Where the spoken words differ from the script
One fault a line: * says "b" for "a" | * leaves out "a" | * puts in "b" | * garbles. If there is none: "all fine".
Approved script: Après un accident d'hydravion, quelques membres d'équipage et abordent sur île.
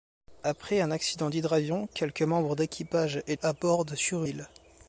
all fine